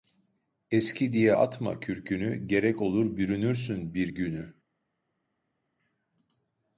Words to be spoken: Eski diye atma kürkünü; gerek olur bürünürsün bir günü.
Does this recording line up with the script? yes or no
yes